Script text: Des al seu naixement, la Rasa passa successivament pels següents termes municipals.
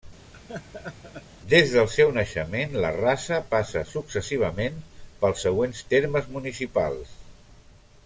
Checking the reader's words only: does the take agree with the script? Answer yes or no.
no